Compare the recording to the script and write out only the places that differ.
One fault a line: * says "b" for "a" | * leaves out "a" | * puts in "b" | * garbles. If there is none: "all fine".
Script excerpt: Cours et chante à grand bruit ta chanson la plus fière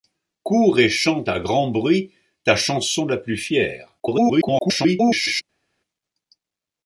* garbles